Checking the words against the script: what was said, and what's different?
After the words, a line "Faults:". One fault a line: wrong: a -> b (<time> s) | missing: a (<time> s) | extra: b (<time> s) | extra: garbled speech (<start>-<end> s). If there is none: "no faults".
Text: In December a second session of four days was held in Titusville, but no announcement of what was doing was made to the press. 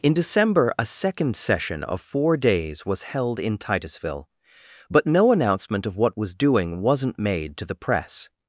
In December a second session of four days was held in Titusville, but no announcement of what was doing wasn't made to the press.
Faults:
wrong: was -> wasn't (6.8 s)